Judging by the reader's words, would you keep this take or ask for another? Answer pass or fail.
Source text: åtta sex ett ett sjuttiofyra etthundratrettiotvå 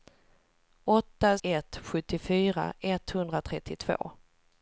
fail